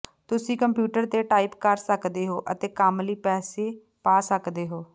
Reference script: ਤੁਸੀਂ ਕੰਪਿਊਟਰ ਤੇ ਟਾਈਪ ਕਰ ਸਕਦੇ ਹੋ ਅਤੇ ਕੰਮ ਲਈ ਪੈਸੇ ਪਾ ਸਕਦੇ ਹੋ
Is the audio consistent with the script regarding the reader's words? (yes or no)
yes